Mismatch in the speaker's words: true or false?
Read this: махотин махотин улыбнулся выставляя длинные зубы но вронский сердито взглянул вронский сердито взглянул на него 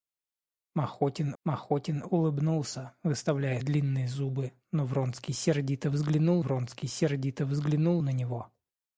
false